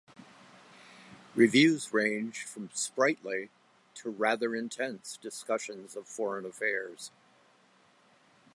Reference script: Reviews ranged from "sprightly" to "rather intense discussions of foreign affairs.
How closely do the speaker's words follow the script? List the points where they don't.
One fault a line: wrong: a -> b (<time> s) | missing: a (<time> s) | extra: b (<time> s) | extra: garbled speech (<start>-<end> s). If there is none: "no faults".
no faults